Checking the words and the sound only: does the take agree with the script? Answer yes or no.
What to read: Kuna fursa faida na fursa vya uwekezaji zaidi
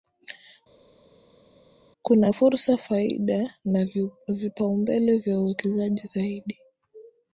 no